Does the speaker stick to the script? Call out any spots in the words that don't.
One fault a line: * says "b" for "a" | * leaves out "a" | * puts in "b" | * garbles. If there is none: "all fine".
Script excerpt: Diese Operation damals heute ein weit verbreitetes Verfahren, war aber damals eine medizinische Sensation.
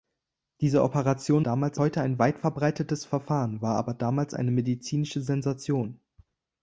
all fine